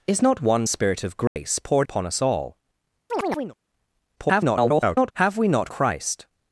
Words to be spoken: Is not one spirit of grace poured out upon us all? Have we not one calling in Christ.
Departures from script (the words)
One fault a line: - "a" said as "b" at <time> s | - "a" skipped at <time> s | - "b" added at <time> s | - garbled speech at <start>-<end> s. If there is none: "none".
- "out" skipped at 1.9 s
- garbled speech at 4.2-5.1 s
- "one calling in" skipped at 5.7 s